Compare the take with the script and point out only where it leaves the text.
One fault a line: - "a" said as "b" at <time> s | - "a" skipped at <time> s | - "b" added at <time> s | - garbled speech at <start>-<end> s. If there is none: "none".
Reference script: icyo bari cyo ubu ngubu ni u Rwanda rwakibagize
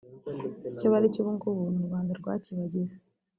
none